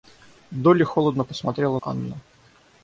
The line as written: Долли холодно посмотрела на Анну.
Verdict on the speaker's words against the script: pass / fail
fail